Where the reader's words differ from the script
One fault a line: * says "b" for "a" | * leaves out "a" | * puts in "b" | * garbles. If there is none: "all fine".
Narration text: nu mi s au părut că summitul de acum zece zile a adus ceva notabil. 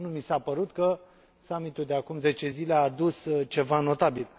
* says "a" for "au"